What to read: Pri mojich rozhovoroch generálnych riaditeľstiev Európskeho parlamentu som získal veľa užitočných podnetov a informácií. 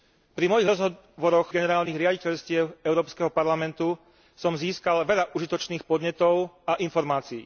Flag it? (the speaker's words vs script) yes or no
no